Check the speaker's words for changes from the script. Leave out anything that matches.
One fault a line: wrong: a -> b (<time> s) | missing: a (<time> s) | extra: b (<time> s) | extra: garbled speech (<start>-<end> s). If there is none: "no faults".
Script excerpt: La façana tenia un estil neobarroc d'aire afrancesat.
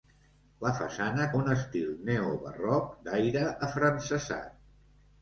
missing: tenia (1.3 s)